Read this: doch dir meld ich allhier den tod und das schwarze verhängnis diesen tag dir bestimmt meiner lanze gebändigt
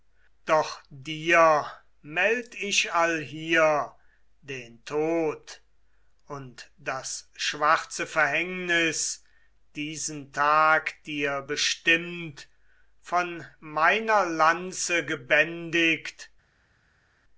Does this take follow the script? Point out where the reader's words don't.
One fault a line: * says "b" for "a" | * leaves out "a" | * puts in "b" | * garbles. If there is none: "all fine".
* puts in "von"